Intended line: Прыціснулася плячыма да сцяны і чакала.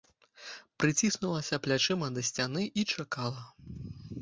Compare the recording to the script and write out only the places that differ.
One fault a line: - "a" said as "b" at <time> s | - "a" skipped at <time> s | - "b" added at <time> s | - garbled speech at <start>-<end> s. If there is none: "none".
none